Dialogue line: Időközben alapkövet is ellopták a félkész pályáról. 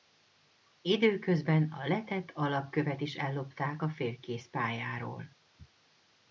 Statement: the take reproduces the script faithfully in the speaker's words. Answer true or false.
false